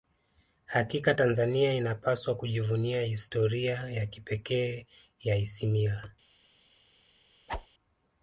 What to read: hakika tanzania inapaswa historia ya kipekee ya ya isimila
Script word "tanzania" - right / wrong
right